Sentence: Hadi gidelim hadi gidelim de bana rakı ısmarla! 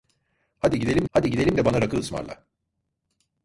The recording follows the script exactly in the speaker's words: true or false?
true